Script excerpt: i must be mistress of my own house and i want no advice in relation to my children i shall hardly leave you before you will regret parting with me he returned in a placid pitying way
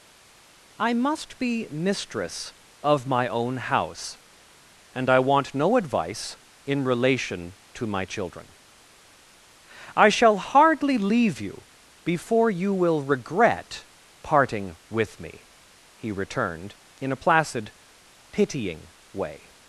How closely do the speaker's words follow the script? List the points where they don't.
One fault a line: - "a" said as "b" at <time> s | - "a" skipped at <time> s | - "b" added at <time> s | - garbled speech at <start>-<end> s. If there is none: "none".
none